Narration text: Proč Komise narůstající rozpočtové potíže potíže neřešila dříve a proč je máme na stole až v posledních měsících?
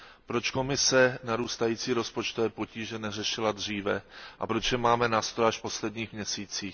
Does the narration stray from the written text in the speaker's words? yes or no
yes